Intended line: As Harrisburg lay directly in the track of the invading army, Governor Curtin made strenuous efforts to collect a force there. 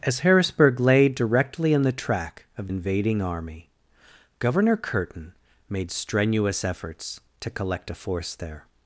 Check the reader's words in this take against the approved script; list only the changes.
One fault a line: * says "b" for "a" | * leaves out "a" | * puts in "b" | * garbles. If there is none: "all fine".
* leaves out "the"